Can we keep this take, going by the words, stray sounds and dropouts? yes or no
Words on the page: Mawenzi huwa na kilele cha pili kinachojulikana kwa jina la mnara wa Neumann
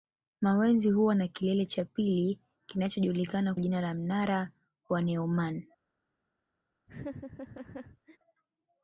no